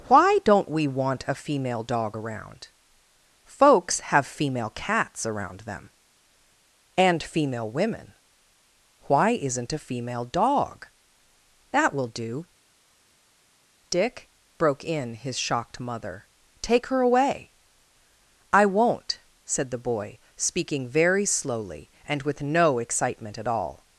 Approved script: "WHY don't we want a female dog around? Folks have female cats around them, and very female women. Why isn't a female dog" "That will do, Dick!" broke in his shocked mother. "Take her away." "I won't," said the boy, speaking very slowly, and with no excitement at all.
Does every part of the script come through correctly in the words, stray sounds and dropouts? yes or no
no